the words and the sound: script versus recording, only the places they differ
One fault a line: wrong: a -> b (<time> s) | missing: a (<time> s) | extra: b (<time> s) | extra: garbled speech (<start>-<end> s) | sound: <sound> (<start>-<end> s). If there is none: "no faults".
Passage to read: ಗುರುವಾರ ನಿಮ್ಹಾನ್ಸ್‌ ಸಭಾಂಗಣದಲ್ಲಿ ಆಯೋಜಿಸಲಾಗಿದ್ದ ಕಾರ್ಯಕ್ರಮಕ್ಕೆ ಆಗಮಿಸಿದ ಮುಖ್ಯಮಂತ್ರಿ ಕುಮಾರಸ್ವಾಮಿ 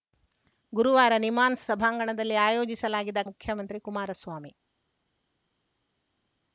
missing: ಕಾರ್ಯಕ್ರಮಕ್ಕೆ ಆಗಮಿಸಿದ (3.2 s)